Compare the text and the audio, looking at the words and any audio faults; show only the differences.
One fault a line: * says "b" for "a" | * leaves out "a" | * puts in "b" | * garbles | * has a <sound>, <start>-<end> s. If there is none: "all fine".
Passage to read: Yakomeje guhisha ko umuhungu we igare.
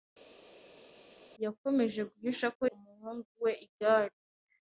all fine